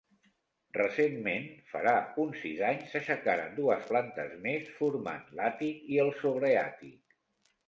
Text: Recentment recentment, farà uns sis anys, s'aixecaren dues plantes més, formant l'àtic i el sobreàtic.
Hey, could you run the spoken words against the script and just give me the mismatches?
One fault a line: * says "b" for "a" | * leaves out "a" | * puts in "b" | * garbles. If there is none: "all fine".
* leaves out "recentment"